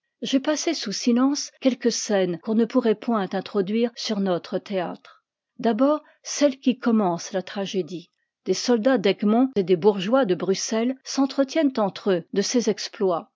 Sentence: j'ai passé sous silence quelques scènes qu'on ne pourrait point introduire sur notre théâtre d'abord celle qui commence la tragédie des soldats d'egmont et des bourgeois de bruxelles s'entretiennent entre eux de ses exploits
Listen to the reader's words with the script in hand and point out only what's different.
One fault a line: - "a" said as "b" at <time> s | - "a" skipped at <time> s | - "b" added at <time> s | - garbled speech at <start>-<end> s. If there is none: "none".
none